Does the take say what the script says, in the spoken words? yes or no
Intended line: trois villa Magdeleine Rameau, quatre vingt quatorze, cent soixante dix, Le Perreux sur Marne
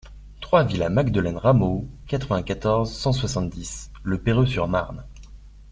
yes